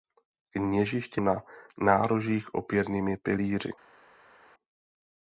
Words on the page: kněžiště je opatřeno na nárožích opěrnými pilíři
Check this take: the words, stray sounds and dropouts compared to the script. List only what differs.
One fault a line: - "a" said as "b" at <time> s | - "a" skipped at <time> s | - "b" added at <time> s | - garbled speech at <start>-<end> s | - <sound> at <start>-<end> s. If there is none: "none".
- "je opatřeno" skipped at 1.2 s